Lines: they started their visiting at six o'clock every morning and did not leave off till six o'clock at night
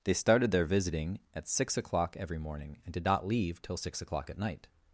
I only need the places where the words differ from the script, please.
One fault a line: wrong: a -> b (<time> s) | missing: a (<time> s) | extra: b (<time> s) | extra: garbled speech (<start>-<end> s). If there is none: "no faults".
missing: off (3.6 s)